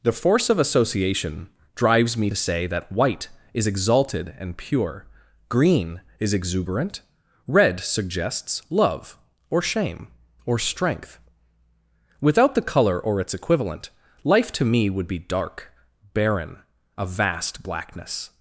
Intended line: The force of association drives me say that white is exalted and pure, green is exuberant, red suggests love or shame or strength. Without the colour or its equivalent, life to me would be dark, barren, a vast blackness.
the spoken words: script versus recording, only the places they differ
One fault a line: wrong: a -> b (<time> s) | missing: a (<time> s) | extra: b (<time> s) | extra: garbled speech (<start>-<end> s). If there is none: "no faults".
no faults